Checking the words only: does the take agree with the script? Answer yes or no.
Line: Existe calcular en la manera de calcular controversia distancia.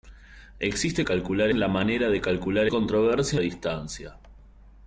yes